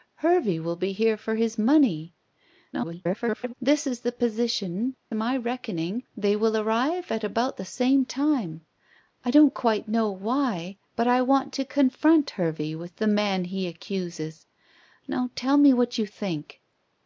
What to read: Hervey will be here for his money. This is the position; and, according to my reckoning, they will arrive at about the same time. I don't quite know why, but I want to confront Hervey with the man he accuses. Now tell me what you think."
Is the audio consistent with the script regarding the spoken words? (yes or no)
no